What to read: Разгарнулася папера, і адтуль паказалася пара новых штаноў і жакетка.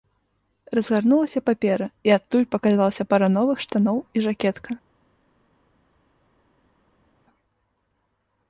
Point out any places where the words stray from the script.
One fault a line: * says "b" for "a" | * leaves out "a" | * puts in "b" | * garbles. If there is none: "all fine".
all fine